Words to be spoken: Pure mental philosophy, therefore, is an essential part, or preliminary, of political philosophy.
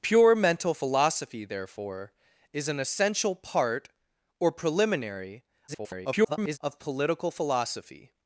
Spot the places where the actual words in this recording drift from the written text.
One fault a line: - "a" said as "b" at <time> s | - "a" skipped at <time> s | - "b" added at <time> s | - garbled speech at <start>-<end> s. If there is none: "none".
- garbled speech at 5.7-6.6 s